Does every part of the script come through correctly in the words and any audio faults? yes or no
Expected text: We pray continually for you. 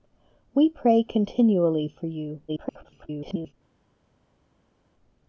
no